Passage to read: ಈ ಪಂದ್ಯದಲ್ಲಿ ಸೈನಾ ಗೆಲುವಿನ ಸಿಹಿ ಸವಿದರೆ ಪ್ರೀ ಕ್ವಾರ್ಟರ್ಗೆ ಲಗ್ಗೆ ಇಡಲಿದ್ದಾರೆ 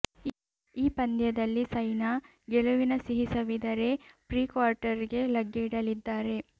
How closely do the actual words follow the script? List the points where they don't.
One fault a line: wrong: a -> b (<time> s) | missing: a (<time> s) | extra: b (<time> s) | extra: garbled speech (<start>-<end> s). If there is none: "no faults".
no faults